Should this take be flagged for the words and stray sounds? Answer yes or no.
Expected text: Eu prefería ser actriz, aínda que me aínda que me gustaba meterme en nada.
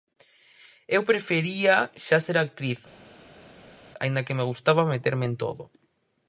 yes